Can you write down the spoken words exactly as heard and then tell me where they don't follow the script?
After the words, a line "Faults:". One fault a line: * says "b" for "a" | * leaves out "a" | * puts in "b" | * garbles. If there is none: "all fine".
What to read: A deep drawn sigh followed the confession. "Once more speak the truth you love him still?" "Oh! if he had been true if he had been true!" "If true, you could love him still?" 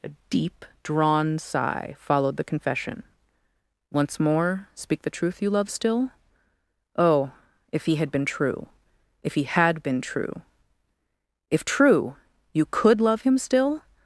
A deep drawn sigh followed the confession. "Once more speak the truth you love still?" "Oh! if he had been true if he had been true!" "If true, you could love him still?"
Faults:
* leaves out "him"